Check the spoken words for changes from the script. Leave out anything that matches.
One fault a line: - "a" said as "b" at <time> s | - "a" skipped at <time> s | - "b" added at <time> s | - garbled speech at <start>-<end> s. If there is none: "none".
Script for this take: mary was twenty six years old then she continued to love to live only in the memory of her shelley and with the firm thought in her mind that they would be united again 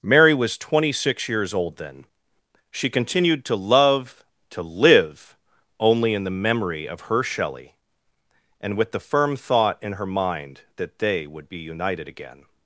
none